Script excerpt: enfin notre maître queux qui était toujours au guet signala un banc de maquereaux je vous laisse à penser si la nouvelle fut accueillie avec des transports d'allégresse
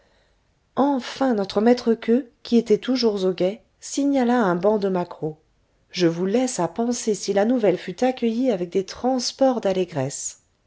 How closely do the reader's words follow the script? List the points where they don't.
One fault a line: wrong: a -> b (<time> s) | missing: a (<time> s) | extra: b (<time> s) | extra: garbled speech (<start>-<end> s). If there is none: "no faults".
no faults